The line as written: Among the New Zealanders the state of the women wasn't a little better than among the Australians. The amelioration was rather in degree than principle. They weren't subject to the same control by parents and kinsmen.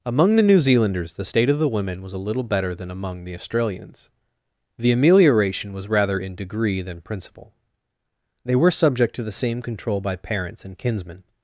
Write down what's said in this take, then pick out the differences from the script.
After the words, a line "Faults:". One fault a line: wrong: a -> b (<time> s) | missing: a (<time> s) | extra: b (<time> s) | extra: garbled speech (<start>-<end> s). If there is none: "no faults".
Among the New Zealanders the state of the women was a little better than among the Australians. The amelioration was rather in degree than principle. They were subject to the same control by parents and kinsmen.
Faults:
wrong: wasn't -> was (2.0 s)
wrong: weren't -> were (8.6 s)